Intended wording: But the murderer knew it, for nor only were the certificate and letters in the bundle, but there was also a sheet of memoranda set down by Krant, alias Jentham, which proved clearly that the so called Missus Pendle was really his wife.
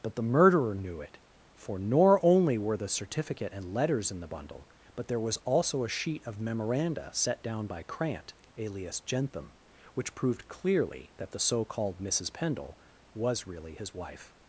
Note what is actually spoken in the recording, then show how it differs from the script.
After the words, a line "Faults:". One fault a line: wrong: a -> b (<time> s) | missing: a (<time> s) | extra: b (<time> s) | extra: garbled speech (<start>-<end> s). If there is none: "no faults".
But the murderer knew it, for nor only were the certificate and letters in the bundle, but there was also a sheet of memoranda set down by Krant, alias Jentham, which proved clearly that the so called Missus Pendle was really his wife.
Faults:
no faults